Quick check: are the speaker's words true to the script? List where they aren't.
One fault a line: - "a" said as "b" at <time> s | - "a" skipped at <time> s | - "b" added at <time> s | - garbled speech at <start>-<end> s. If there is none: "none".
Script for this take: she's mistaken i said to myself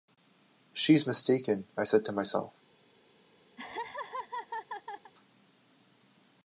none